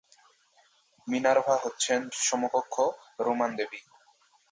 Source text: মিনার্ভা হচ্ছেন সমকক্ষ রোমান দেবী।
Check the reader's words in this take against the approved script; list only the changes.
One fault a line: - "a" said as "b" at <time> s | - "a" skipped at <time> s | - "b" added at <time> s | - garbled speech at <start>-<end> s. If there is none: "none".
none